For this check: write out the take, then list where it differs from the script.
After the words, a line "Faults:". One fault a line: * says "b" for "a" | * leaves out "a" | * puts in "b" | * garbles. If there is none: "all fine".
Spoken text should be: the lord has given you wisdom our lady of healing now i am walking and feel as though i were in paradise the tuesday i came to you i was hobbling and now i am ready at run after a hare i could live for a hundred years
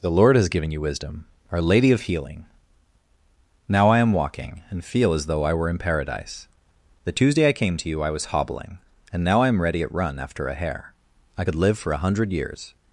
the lord has given you wisdom our lady of healing now i am walking and feel as though i were in paradise the tuesday i came to you i was hobbling and now i am ready at run after a hare i could live for a hundred years
Faults:
all fine